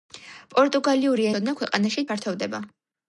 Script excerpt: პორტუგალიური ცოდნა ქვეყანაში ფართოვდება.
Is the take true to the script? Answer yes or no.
yes